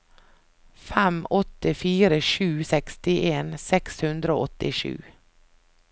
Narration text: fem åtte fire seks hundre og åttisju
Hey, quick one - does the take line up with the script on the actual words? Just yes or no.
no